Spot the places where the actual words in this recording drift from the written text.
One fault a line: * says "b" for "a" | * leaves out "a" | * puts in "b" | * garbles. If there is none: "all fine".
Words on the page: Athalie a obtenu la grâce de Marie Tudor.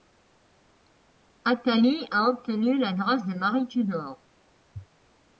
all fine